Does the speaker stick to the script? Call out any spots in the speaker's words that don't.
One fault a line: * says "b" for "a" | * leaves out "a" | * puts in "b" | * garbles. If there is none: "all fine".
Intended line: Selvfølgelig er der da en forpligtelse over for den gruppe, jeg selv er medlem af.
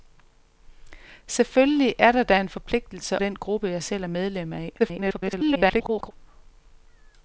* leaves out "over for"
* garbles